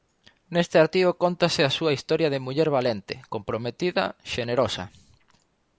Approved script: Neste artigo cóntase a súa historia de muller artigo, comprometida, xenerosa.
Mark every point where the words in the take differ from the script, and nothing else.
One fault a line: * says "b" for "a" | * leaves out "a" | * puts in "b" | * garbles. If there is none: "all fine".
* says "valente" for "artigo"